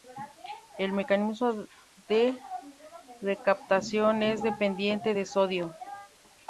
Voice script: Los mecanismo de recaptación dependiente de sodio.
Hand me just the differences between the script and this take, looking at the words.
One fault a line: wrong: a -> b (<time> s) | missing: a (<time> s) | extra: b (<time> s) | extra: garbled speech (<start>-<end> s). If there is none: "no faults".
wrong: Los -> El (0.8 s)
extra: es (4.2 s)